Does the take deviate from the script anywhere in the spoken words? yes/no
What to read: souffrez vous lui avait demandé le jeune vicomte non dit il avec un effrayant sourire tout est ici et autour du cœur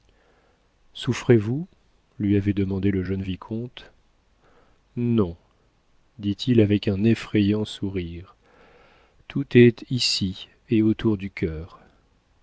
no